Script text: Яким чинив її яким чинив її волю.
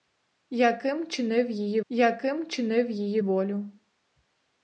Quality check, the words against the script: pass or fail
pass